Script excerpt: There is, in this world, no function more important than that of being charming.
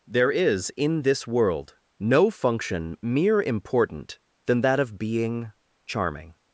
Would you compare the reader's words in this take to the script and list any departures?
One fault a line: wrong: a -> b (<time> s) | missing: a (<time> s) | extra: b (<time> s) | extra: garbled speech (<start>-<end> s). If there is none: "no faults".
wrong: more -> mere (3.0 s)